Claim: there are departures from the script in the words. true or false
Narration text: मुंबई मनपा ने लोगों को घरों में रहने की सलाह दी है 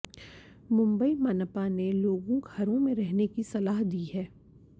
true